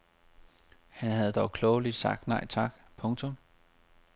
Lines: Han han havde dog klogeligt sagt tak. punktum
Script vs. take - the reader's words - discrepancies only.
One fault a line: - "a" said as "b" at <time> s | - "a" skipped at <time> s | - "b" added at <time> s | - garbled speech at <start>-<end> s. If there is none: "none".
- "han" skipped at 1.1 s
- "nej" added at 2.3 s